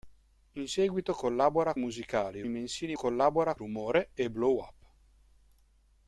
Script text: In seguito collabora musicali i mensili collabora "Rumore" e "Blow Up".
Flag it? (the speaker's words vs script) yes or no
no